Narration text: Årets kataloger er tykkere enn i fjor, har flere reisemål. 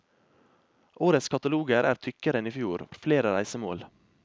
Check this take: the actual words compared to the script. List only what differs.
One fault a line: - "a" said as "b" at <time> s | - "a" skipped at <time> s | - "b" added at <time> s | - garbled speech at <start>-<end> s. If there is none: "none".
none